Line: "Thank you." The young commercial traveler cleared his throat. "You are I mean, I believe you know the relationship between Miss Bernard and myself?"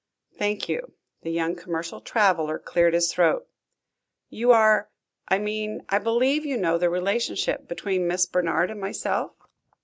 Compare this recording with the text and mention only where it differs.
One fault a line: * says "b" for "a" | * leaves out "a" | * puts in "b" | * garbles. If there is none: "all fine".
all fine